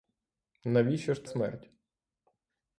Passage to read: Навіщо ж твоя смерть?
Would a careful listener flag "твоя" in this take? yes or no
yes